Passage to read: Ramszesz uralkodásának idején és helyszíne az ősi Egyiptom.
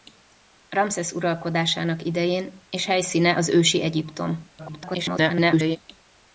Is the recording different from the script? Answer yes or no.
yes